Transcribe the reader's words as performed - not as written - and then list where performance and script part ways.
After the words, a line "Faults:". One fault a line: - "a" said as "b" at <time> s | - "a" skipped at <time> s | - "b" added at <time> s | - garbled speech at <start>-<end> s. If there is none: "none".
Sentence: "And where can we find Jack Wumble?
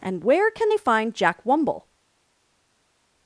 "And where can they find Jack Wumble?
Faults:
- "we" said as "they" at 0.7 s